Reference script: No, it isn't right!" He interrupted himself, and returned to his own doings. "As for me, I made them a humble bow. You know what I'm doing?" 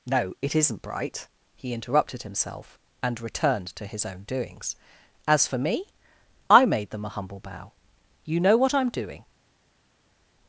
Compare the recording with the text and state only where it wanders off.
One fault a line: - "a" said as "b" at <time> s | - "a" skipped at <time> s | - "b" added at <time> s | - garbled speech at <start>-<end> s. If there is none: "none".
- "right" said as "bright" at 0.8 s